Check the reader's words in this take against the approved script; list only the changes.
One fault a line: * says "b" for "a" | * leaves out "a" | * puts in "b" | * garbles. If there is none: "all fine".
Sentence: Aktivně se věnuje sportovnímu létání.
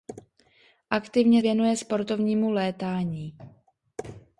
* leaves out "se"